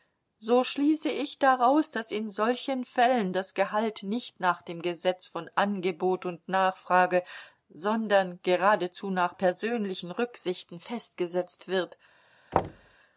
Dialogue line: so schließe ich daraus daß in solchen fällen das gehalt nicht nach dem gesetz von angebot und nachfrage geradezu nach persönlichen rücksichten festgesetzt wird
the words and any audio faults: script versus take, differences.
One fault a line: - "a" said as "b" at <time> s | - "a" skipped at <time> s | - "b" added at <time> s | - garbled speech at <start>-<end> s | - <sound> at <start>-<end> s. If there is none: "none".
- "sondern" added at 7.7 s
- thud at 12.5-13.0 s